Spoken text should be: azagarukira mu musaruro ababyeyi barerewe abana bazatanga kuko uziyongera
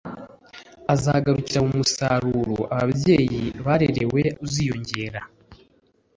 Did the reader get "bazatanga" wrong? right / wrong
wrong